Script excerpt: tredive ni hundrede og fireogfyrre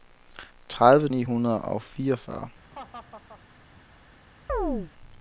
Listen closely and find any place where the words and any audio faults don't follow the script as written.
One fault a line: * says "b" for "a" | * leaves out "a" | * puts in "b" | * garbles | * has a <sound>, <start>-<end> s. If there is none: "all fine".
* has a laugh, 2.7-3.4 s
* has a chirp, 4.5-4.9 s